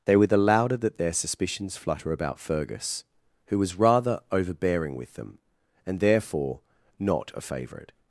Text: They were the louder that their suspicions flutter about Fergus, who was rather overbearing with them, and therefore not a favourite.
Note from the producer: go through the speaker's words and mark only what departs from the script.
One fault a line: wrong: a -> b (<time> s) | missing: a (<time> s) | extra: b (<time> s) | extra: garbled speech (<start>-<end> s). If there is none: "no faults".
no faults